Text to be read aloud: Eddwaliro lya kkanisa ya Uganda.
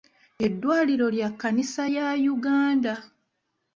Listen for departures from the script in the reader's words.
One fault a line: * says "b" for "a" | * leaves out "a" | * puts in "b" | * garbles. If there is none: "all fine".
all fine